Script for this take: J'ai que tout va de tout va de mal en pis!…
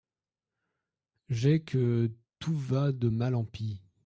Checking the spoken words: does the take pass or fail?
fail